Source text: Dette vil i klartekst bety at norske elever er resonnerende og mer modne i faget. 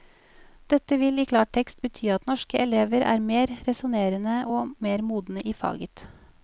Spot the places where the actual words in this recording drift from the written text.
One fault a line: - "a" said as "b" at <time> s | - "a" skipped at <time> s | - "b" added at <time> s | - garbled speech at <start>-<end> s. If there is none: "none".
- "mer" added at 3.3 s